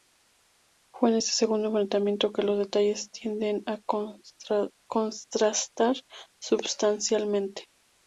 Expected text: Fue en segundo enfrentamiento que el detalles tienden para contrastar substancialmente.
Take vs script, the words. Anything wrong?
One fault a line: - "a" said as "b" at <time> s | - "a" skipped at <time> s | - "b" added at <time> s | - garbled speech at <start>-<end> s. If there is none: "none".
- "este" added at 1.2 s
- "el" said as "los" at 2.4 s
- "para" said as "a" at 3.7 s